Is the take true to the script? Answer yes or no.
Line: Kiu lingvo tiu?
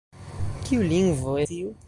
yes